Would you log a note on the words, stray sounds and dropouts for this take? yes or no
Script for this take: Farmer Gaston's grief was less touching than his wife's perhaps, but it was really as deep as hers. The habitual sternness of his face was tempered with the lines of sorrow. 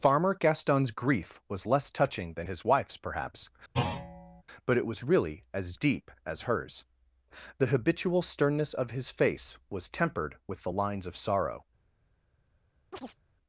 yes